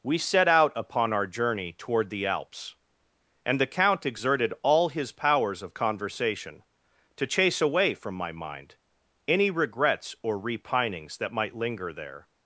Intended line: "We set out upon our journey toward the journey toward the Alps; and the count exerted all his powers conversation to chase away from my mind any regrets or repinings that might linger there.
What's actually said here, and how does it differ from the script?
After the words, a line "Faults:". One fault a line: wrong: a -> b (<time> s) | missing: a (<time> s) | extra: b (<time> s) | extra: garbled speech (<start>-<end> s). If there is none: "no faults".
"We set out upon our journey toward the Alps; and the count exerted all his powers of conversation to chase away from my mind any regrets or repinings that might linger there.
Faults:
missing: journey toward the (2.2 s)
extra: of (5.6 s)